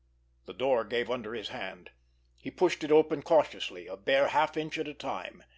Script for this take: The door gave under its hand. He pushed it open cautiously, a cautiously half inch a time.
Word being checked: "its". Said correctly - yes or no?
no